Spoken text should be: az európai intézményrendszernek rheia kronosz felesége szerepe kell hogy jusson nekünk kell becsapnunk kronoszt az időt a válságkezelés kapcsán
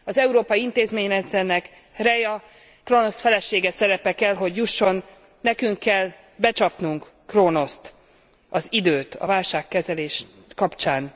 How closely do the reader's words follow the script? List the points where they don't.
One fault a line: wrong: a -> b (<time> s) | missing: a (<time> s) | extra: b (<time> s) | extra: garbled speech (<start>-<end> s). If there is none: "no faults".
no faults